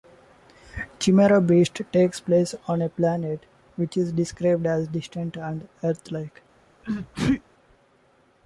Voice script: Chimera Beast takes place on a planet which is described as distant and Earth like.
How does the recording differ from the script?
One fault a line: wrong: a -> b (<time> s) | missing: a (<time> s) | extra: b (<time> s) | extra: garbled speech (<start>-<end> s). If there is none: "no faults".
no faults